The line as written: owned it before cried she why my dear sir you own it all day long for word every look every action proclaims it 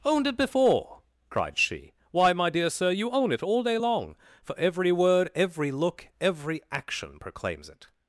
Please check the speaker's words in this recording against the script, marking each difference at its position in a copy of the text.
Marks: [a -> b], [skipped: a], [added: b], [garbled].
owned it before cried she why my dear sir you own it all day long for [added: every] word every look every action proclaims it